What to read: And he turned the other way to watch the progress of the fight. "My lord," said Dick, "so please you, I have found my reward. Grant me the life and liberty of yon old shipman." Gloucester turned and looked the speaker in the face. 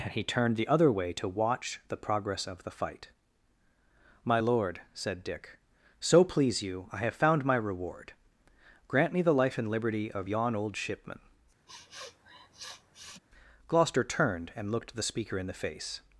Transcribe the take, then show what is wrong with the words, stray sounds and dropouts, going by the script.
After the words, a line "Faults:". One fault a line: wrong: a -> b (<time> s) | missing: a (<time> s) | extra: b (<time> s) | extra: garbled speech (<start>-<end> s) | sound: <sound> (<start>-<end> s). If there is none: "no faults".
And he turned the other way to watch the progress of the fight. "My lord," said Dick, "so please you, I have found my reward. Grant me the life and liberty of yon old shipman." Gloucester turned and looked the speaker in the face.
Faults:
sound: sniff (11.7-13.2 s)